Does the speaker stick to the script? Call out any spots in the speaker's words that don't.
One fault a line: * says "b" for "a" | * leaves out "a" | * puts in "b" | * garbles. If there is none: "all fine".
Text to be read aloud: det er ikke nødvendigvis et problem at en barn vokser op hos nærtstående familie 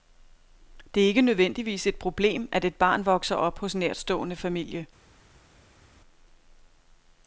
* says "et" for "en"